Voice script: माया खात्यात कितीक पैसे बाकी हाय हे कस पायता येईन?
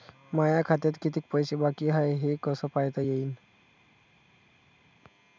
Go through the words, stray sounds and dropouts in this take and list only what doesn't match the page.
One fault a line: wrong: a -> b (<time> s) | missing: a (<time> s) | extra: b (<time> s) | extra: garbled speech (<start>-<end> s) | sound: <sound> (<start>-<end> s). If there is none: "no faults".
no faults